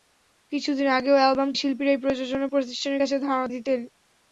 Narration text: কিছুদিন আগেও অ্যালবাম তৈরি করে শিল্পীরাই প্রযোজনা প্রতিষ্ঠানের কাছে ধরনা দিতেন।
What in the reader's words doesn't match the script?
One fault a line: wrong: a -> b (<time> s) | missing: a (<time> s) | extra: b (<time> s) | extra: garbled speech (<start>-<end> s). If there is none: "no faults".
missing: তৈরি করে (1.5 s)
missing: ধরনা (3.1 s)